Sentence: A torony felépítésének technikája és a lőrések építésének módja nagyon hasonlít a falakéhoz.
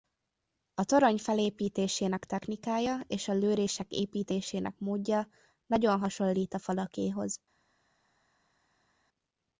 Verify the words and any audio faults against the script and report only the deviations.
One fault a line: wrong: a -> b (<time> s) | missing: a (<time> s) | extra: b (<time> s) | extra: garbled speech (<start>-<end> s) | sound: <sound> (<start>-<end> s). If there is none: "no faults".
no faults